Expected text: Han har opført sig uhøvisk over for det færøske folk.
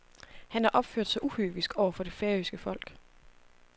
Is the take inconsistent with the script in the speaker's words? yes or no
no